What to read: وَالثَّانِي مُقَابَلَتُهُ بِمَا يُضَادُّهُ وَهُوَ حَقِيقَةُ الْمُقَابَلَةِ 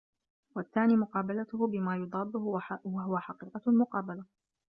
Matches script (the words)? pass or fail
pass